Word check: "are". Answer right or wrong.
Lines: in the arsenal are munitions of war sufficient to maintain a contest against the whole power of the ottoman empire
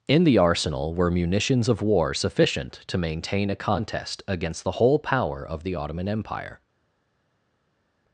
wrong